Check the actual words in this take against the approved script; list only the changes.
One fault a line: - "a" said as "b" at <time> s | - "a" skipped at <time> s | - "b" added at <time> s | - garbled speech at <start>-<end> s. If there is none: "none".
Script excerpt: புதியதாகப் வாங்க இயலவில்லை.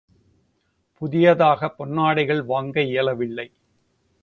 - "பொன்னாடைகள்" added at 1.8 s